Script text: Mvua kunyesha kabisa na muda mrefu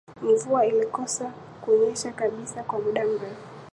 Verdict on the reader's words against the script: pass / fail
fail